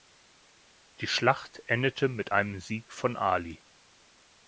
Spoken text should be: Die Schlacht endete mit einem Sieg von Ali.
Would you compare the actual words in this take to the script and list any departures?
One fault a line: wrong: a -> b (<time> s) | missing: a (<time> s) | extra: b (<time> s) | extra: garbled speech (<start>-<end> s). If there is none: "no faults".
no faults